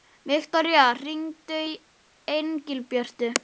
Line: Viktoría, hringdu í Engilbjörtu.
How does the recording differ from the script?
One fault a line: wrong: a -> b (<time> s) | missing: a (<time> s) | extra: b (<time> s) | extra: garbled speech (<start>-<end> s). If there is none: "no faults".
no faults